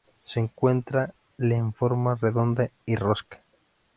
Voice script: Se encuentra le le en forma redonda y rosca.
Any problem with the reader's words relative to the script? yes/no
yes